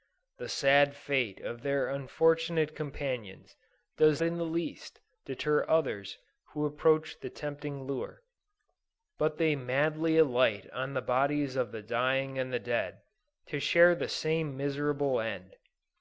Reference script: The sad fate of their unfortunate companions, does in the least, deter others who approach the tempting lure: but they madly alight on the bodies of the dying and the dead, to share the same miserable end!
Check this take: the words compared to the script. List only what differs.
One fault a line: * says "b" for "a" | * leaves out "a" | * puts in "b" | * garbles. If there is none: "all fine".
all fine